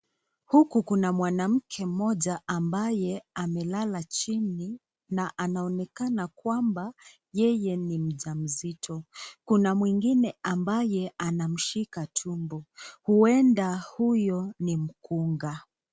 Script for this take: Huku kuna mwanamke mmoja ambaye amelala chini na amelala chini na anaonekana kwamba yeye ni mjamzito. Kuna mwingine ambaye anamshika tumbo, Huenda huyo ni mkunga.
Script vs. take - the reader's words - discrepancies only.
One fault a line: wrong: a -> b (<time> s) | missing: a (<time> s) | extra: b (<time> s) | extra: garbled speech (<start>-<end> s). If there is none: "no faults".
missing: amelala chini na (5.4 s)